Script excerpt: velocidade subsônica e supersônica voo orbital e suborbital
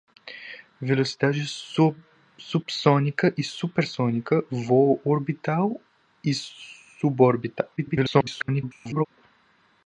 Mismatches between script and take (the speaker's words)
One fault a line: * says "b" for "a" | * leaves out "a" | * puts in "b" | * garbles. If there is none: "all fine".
* garbles